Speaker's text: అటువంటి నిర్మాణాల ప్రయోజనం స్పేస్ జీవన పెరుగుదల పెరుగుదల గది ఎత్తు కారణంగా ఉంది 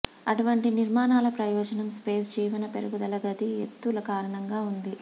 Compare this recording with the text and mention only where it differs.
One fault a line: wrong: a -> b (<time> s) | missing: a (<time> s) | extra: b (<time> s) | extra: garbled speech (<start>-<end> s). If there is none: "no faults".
missing: పెరుగుదల (3.2 s)